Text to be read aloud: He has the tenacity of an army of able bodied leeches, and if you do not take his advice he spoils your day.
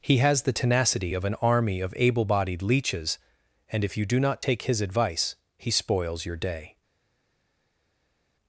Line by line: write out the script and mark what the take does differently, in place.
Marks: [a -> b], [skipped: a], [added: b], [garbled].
He has the tenacity of an army of able bodied leeches, and if you do not take his advice he spoils your day.